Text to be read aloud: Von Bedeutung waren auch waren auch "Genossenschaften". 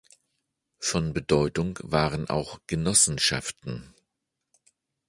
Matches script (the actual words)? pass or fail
fail